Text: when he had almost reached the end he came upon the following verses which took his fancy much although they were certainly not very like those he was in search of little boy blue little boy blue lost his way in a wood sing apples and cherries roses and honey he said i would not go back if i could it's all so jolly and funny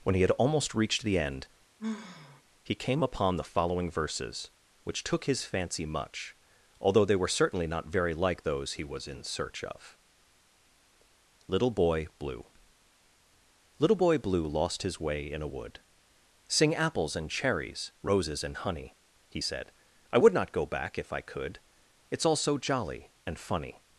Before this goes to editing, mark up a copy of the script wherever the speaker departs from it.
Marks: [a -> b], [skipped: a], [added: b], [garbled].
when he had almost reached the end he came upon the following verses which took his fancy much although they were certainly not very like those he was in search of little boy blue little boy blue lost his way in a wood sing apples and cherries roses and honey he said i would not go back if i could it's all so jolly and funny